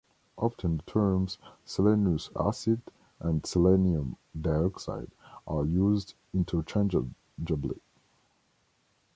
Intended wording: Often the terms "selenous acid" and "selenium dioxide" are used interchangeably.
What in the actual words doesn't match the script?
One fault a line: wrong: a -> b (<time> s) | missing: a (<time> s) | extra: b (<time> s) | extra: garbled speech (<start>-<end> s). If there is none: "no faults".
no faults